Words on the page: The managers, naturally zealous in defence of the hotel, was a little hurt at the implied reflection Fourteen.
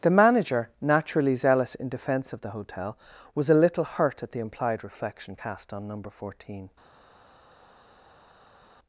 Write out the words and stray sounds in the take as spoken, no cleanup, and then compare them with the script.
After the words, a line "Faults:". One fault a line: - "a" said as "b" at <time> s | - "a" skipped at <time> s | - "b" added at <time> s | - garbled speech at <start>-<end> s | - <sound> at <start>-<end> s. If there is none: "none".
The manager, naturally zealous in defence of the hotel, was a little hurt at the implied reflection cast on Number Fourteen.
Faults:
- "managers" said as "manager" at 0.1 s
- "cast on Number" added at 5.3 s